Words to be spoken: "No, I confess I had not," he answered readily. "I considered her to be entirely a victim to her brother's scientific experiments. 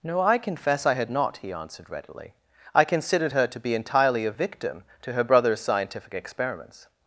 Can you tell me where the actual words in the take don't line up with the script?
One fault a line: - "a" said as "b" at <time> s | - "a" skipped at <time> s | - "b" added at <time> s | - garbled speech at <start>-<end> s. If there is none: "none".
none